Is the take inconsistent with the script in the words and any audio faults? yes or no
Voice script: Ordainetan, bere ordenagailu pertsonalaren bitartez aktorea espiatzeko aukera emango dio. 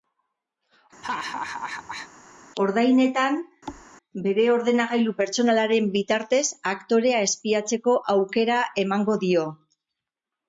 yes